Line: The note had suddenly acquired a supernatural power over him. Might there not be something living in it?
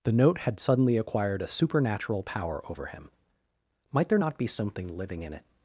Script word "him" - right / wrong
right